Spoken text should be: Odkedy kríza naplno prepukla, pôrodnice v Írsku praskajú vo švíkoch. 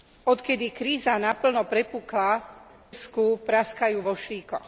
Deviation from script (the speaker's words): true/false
true